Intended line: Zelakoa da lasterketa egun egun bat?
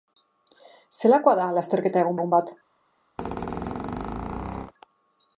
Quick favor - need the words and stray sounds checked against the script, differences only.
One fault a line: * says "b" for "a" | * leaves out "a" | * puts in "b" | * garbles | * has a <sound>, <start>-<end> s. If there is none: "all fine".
* has a squeak, 3.2-4.7 s